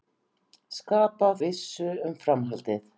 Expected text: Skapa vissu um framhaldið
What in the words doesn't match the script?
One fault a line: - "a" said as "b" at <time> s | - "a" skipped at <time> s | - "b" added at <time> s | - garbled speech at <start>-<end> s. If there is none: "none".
none